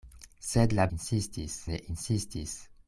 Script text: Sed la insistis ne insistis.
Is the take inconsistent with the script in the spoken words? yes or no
no